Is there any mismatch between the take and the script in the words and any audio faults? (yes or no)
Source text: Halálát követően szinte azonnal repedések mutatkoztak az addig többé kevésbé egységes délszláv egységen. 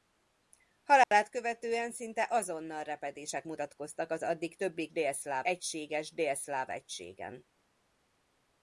yes